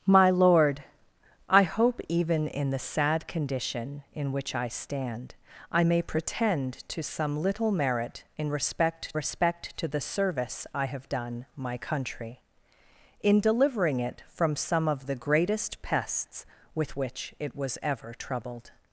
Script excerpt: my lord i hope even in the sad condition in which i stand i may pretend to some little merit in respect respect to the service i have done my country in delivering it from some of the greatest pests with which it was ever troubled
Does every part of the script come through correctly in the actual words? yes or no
yes